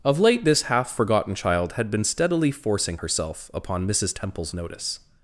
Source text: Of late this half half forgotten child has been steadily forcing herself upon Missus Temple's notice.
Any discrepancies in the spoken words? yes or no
yes